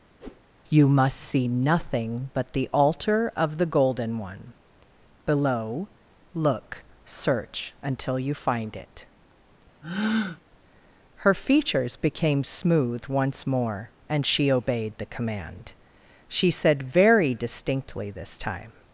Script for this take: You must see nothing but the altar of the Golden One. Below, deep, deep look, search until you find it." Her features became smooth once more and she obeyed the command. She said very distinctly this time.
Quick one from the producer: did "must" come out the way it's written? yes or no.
yes